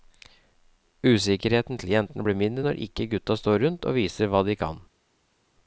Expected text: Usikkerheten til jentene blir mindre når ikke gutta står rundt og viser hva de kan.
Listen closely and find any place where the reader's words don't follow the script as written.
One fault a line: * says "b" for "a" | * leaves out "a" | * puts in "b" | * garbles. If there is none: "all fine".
all fine